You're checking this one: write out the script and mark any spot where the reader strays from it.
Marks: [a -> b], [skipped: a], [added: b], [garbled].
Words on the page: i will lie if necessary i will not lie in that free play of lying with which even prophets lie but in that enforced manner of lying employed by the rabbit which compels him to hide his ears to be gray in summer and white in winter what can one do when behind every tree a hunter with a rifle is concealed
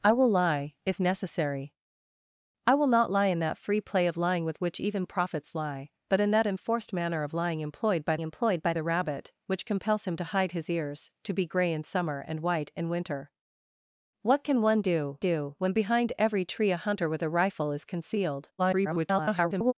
i will lie if necessary i will not lie in that free play of lying with which even prophets lie but in that enforced manner of lying employed by [added: employed by] the rabbit which compels him to hide his ears to be gray in summer and white in winter what can one do [added: do] when behind every tree a hunter with a rifle is concealed [garbled]